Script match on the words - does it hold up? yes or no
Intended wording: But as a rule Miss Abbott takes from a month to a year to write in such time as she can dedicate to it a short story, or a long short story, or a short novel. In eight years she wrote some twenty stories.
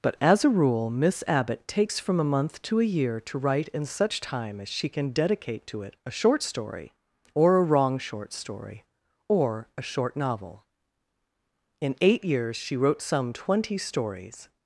no